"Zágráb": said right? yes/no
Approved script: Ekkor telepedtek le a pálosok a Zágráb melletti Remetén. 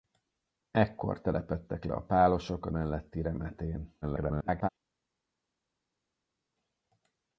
no